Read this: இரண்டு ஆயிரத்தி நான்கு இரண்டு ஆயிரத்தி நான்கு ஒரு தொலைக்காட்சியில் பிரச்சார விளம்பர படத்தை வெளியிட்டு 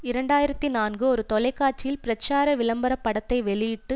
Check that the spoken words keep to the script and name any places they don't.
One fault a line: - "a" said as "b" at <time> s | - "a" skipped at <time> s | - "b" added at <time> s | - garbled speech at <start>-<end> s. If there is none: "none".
- "இரண்டு ஆயிரத்தி நான்கு" skipped at 1.0 s